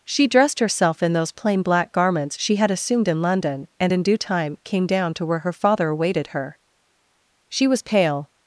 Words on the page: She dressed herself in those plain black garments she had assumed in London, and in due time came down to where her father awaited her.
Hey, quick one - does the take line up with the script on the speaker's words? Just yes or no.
no